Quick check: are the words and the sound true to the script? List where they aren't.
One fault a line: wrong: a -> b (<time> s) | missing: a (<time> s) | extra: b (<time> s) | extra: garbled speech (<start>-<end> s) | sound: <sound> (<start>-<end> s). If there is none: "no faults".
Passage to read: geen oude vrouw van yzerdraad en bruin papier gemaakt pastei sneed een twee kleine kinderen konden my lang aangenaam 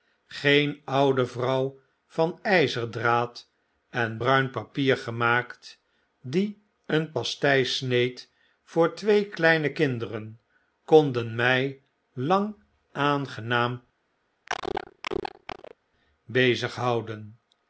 extra: die een (6.2 s)
wrong: een -> voor (8.6 s)
sound: cough (14.5-15.7 s)